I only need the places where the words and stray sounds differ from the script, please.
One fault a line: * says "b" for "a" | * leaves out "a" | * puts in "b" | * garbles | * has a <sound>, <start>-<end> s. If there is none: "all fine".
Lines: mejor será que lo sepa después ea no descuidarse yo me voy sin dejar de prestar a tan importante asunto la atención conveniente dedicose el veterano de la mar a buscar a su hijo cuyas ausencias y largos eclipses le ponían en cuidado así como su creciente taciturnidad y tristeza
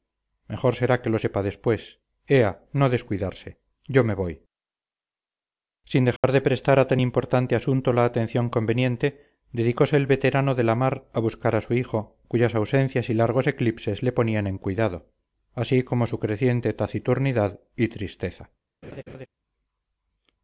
* has a dropout, 6.2-6.2 s
* has a laugh, 18.8-19.3 s